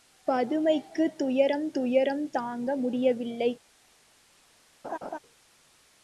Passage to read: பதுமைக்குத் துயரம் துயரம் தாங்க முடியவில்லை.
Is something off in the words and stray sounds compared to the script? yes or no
yes